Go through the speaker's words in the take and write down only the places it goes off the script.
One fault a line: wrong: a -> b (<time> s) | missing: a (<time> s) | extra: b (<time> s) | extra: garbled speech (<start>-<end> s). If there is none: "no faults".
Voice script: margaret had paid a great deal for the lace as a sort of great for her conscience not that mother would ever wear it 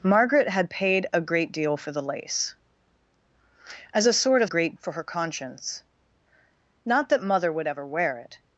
no faults